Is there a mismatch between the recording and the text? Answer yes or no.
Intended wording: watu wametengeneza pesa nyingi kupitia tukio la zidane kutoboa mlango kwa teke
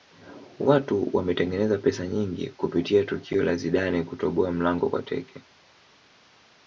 no